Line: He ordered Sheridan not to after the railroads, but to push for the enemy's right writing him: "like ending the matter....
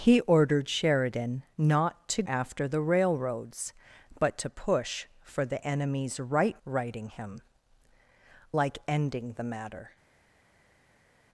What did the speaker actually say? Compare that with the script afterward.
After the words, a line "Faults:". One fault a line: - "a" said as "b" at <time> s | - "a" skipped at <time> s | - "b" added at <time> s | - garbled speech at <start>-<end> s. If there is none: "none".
He ordered Sheridan not to after the railroads, but to push for the enemy's right writing him: "like ending the matter....
Faults:
none